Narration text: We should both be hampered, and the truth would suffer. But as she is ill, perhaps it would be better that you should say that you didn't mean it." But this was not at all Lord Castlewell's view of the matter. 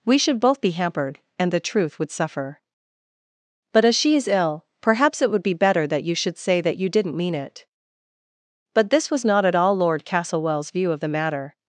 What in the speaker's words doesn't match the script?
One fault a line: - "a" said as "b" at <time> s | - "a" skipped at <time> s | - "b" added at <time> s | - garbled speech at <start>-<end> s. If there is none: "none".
none